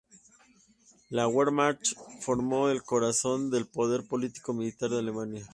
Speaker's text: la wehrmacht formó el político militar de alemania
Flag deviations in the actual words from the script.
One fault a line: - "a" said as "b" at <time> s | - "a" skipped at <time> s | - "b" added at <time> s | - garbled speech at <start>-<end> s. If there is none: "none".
- "corazón del poder" added at 2.8 s